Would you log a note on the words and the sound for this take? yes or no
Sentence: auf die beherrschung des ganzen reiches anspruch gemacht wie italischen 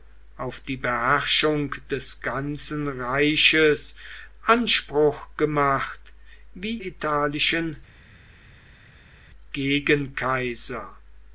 no